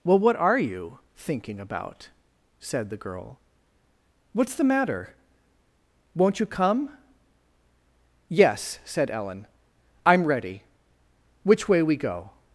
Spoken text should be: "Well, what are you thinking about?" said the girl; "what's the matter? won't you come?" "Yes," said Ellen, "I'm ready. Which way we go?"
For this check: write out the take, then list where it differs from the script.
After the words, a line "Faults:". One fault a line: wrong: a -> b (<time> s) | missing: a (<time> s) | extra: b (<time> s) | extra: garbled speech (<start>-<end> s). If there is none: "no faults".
"Well, what are you thinking about?" said the girl; "what's the matter? won't you come?" "Yes," said Ellen, "I'm ready. Which way we go?"
Faults:
no faults